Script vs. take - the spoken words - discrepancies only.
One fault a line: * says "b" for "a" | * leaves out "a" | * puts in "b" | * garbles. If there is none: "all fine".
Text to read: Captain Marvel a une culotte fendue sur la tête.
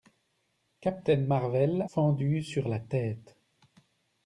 * leaves out "a une culotte"